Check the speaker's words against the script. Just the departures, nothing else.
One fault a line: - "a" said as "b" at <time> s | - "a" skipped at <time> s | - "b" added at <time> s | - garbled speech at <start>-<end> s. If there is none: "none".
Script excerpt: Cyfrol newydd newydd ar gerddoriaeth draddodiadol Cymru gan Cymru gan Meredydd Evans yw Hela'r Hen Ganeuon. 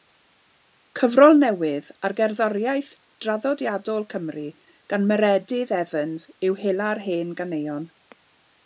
- "newydd" skipped at 1.9 s
- "Cymru gan" skipped at 5.1 s